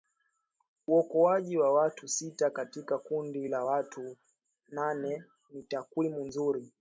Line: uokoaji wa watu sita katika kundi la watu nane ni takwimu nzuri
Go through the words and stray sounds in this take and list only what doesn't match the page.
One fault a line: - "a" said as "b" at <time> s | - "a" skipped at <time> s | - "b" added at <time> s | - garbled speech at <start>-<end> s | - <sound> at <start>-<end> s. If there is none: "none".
none